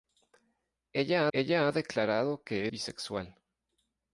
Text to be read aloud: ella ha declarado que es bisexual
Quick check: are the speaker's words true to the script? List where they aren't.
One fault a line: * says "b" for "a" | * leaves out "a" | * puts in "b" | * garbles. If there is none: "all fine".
* puts in "ella"
* leaves out "es"